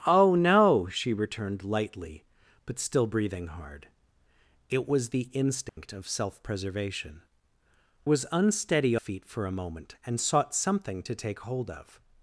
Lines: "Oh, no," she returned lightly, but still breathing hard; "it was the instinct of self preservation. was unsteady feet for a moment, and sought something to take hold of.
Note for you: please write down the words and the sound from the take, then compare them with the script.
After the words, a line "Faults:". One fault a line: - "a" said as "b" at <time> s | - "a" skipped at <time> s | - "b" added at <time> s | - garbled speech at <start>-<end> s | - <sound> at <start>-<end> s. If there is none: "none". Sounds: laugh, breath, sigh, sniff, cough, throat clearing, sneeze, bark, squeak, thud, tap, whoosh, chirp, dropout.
"Oh, no," she returned lightly, but still breathing hard; "it was the instinct of self preservation. was unsteady feet for a moment, and sought something to take hold of.
Faults:
- dropout at 5.7-5.8 s